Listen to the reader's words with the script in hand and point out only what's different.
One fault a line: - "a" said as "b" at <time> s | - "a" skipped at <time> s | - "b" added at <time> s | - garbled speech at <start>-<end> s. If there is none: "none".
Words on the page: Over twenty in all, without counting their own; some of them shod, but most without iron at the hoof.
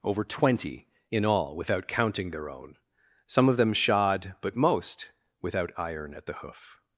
none